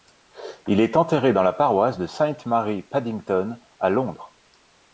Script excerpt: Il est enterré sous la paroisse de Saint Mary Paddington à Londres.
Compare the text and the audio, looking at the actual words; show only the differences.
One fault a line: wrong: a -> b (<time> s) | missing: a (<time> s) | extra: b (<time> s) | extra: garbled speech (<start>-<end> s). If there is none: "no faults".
wrong: sous -> dans (1.3 s)